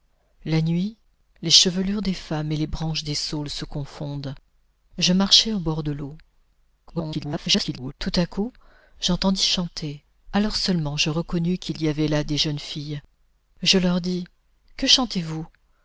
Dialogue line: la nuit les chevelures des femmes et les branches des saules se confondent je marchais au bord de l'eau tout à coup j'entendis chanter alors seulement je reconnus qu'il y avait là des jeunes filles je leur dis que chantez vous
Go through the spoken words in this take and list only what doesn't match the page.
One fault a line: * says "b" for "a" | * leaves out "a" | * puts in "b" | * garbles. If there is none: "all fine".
* garbles